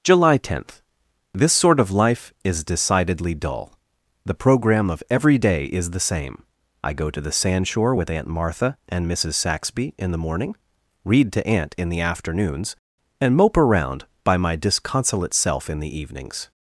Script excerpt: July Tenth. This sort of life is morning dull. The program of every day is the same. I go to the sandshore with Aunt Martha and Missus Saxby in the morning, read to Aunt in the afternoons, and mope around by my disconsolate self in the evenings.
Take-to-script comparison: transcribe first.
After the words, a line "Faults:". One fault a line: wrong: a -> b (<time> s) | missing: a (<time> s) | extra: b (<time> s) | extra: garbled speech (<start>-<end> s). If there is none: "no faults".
July Tenth. This sort of life is decidedly dull. The program of every day is the same. I go to the sandshore with Aunt Martha and Missus Saxby in the morning, read to Aunt in the afternoons, and mope around by my disconsolate self in the evenings.
Faults:
wrong: morning -> decidedly (2.6 s)